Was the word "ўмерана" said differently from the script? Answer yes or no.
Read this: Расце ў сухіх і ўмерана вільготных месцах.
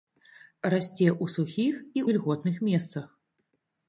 yes